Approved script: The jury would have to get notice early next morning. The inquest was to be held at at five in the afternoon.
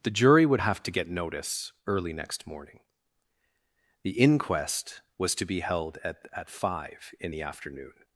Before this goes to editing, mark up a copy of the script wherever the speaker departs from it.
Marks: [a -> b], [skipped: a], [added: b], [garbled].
The jury would have to get notice early next morning. The inquest was to be held at at five in the afternoon.